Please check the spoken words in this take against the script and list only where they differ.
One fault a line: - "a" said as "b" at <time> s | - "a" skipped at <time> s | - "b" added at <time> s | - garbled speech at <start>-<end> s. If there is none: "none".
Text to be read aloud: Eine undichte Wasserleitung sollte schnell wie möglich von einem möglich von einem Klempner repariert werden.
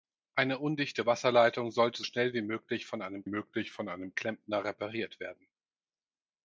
none